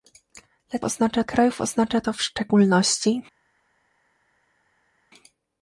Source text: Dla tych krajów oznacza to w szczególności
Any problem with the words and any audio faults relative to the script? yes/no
yes